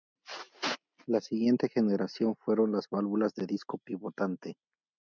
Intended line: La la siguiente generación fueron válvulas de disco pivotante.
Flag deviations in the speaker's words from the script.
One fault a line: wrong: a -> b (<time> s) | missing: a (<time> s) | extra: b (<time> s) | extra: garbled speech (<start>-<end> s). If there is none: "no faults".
missing: la (1.2 s)
extra: las (2.7 s)